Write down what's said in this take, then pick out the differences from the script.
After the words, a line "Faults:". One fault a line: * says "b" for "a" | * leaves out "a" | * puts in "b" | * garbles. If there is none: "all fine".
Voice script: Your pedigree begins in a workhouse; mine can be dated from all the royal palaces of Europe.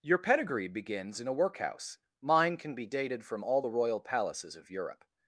Your pedigree begins in a workhouse; mine can be dated from all the royal palaces of Europe.
Faults:
all fine